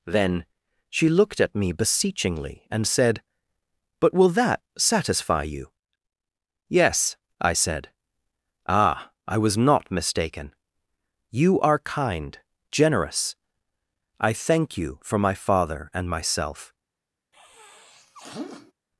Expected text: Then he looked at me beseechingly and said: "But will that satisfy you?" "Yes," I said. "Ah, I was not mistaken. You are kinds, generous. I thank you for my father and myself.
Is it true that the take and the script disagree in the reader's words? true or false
true